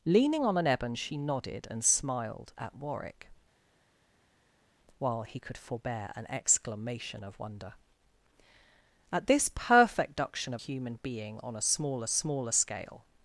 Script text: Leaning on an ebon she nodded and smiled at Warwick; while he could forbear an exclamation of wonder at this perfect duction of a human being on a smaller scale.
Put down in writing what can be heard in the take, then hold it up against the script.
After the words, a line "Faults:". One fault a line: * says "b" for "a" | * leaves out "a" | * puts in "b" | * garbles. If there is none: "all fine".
Leaning on an ebon she nodded and smiled at Warwick; while he could forbear an exclamation of wonder at this perfect duction of human being on a smaller smaller scale.
Faults:
* leaves out "a"
* puts in "smaller"